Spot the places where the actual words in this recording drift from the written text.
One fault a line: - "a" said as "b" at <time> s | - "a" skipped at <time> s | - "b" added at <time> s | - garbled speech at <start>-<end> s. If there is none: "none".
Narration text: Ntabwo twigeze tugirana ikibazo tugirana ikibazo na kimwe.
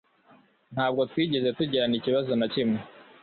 - "tugirana ikibazo" skipped at 2.3 s